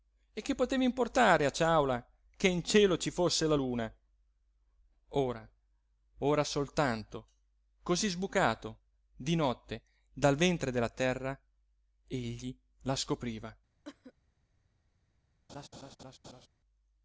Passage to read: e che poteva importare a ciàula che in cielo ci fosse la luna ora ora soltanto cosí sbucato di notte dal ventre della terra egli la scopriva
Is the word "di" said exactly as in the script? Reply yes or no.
yes